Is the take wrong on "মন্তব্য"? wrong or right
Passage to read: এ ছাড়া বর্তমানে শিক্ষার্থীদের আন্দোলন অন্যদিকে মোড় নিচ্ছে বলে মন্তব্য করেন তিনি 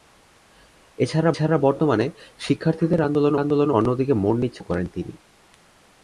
wrong